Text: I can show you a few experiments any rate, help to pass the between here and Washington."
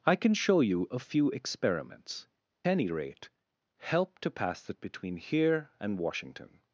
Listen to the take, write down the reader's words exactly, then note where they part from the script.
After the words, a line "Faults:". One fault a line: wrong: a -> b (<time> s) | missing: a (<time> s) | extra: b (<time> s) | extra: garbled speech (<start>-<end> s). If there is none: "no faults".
I can show you a few experiments any rate, help to pass the between here and Washington."
Faults:
no faults